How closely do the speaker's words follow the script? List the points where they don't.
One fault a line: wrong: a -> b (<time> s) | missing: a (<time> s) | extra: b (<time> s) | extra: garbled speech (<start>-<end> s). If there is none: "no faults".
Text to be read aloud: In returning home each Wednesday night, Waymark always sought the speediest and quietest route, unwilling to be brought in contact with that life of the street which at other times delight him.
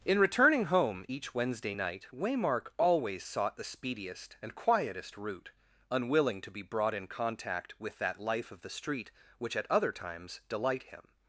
no faults